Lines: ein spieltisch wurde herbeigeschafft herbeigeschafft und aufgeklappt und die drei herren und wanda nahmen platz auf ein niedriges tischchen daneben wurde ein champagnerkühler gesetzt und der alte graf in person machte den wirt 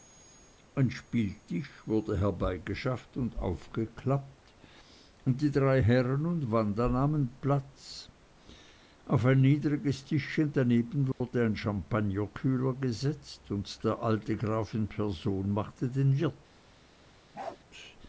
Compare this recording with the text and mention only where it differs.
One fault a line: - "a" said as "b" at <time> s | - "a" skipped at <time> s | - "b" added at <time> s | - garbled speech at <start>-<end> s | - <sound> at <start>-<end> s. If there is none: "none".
- "herbeigeschafft" skipped at 3.2 s
- dropout at 11.1-11.2 s
- bark at 17.3-17.6 s